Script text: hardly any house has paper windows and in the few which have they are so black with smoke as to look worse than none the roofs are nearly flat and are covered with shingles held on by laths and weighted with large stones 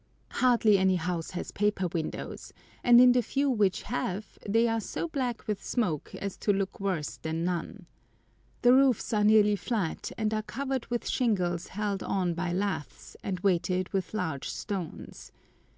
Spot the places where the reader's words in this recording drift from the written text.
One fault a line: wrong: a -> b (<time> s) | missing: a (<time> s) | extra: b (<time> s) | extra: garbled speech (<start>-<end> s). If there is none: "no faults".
no faults